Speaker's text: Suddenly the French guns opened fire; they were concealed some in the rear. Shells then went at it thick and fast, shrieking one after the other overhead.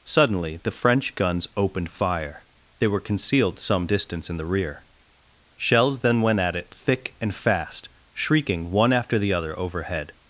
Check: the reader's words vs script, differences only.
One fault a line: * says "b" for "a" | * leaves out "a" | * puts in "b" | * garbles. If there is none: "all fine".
* puts in "distance"